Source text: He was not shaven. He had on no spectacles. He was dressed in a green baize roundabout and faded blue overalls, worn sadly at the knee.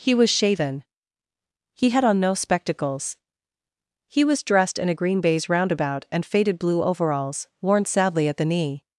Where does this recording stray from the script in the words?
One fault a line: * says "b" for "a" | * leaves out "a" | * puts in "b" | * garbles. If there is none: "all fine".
* leaves out "not"